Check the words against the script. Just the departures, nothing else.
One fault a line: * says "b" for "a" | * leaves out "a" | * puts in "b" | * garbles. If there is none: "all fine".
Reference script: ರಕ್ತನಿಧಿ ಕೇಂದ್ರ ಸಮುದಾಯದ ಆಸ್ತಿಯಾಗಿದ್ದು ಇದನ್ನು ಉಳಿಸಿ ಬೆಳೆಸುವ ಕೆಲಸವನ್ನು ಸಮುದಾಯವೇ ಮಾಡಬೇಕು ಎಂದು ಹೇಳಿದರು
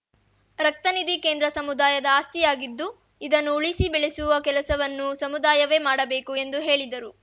all fine